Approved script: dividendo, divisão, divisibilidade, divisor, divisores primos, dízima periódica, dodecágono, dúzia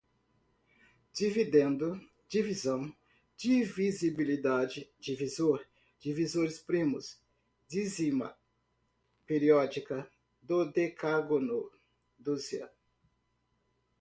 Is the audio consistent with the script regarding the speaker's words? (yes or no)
yes